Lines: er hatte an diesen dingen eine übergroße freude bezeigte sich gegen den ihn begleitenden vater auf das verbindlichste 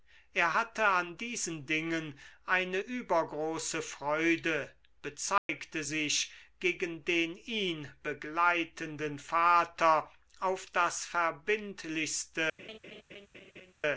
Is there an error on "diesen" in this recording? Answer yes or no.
no